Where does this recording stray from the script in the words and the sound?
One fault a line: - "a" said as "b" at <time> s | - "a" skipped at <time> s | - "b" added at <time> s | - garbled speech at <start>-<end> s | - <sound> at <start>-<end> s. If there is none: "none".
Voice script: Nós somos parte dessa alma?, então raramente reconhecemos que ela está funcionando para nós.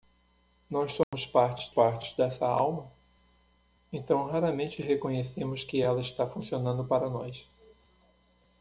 - dropout at 1.0-1.1 s
- "parte" added at 1.7 s